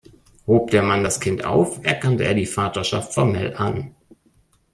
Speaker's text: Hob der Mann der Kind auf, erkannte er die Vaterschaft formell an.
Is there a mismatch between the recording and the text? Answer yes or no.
yes